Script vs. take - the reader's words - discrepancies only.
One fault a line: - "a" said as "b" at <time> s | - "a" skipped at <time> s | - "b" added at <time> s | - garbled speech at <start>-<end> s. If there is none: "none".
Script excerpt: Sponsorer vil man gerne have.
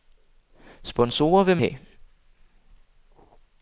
- "man gerne" skipped at 1.6 s